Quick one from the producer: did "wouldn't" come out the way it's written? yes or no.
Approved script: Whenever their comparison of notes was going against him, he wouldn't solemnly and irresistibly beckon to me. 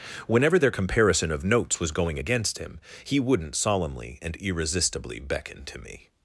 yes